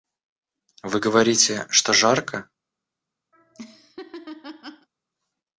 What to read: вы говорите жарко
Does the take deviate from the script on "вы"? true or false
false